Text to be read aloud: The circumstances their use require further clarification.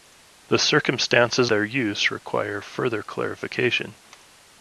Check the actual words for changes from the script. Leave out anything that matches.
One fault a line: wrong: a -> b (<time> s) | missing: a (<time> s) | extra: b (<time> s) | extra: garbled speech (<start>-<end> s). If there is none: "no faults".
no faults